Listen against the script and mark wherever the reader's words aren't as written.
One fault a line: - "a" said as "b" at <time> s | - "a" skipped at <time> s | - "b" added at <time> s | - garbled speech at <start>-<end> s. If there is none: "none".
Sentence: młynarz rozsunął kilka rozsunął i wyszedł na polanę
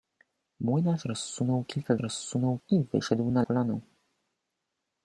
none